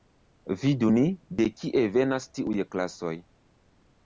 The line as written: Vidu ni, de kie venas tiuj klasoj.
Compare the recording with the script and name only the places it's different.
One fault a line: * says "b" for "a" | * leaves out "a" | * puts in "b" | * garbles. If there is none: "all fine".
all fine